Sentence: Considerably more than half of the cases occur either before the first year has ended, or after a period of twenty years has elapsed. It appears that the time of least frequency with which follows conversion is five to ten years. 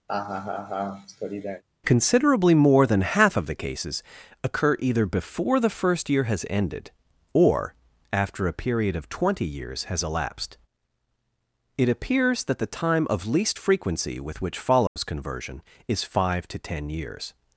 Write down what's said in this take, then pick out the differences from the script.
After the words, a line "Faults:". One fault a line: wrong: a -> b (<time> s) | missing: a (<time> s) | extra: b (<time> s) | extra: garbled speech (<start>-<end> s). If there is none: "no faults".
Considerably more than half of the cases occur either before the first year has ended, or after a period of twenty years has elapsed. It appears that the time of least frequency with which follows conversion is five to ten years.
Faults:
no faults